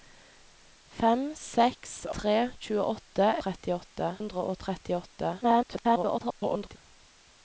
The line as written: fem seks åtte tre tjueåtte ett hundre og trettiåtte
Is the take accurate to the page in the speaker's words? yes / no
no